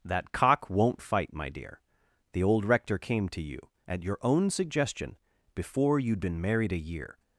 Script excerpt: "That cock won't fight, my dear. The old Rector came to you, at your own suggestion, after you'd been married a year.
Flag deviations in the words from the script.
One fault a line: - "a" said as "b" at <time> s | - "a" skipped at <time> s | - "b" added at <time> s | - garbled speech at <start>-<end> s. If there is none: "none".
- "after" said as "before" at 5.6 s